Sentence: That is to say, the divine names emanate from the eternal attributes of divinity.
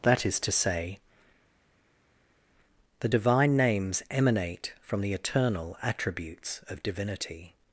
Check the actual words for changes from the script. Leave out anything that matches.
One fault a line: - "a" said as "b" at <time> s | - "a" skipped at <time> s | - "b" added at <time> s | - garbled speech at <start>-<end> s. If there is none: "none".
none